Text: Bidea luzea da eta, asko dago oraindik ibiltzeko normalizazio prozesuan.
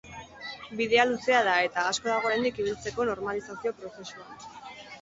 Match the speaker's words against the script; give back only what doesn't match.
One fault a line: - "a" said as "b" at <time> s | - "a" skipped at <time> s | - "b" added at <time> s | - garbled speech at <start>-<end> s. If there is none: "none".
none